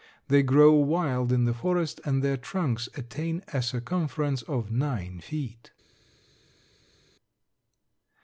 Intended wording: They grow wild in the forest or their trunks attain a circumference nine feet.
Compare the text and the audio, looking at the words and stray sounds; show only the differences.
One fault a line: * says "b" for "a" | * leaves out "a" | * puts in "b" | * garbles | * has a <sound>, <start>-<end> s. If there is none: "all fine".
* says "and" for "or"
* puts in "of"